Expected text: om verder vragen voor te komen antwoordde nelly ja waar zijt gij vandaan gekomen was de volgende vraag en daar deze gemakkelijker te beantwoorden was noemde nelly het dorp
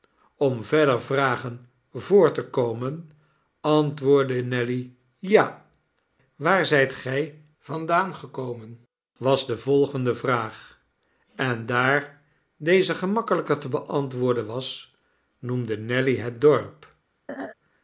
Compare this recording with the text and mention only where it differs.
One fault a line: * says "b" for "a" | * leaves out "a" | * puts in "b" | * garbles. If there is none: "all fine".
all fine